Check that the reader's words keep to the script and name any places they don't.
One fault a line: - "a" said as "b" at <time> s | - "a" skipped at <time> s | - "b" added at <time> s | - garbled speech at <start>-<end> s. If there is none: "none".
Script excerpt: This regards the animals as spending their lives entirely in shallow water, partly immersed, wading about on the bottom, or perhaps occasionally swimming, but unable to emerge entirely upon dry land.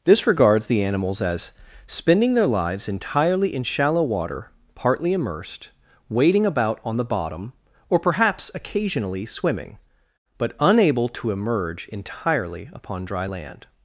none